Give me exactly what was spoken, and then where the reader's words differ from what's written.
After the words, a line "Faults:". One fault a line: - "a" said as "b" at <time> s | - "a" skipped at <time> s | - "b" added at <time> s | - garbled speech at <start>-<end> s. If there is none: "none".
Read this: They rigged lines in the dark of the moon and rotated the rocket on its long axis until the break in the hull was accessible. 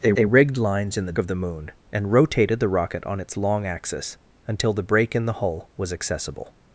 They they rigged lines in the of the moon and rotated the rocket on its long axis until the break in the hull was accessible.
Faults:
- "they" added at 0.1 s
- "dark" skipped at 1.1 s